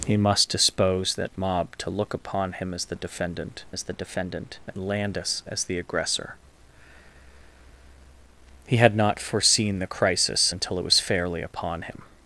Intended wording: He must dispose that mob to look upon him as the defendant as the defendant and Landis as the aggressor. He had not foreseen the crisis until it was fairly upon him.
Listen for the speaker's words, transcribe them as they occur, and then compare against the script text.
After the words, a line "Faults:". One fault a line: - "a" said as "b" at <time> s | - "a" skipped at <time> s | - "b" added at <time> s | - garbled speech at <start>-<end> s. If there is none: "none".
He must dispose that mob to look upon him as the defendant as the defendant and Landis as the aggressor. He had not foreseen the crisis until it was fairly upon him.
Faults:
none